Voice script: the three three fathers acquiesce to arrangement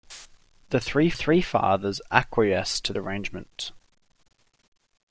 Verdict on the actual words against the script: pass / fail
pass